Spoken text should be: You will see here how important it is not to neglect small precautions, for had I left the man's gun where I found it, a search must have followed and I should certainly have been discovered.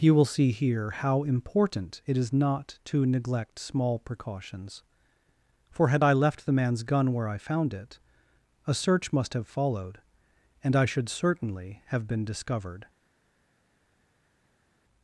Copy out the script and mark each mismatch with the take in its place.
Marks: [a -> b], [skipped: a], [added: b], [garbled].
You will see here how important it is not to neglect small precautions, for had I left the man's gun where I found it, a search must have followed and I should certainly have been discovered.